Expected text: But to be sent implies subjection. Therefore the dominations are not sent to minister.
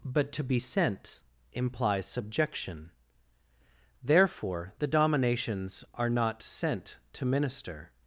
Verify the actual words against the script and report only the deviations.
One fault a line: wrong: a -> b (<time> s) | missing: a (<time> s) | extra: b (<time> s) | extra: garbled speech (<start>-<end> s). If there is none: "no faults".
no faults